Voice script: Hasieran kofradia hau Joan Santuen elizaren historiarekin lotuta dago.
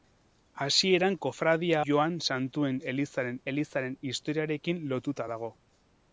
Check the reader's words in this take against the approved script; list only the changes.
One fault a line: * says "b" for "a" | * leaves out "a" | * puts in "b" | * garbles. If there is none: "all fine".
* leaves out "hau"
* puts in "elizaren"